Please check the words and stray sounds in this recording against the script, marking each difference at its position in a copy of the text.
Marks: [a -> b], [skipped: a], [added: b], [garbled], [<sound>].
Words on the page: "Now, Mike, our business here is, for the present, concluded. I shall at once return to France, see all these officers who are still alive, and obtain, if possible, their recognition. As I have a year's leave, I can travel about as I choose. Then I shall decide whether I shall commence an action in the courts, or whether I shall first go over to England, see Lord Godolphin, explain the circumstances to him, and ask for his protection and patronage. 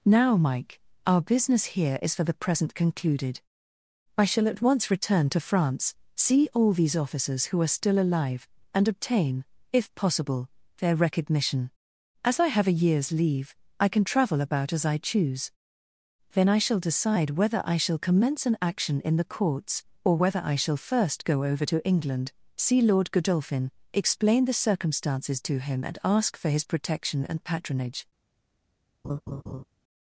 "Now, Mike, our business here is, for the present, concluded. I shall at once return to France, see all these officers who are still alive, and obtain, if possible, their recognition. As I have a year's leave, I can travel about as I choose. Then I shall decide whether I shall commence an action in the courts, or whether I shall first go over to England, see Lord Godolphin, explain the circumstances to him, and ask for his protection and patronage. [laugh]